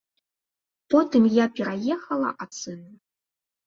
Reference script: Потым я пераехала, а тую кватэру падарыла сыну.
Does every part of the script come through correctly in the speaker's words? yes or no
no